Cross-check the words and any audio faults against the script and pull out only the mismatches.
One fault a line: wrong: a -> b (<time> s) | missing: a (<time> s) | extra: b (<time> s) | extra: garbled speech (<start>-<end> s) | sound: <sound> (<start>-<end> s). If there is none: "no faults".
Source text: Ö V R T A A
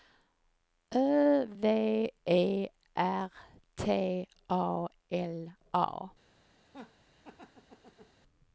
extra: E (2.3 s)
extra: L (5.1 s)
sound: laugh (6.6-8.2 s)